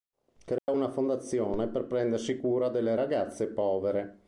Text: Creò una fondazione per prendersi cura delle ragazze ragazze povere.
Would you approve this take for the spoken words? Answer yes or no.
no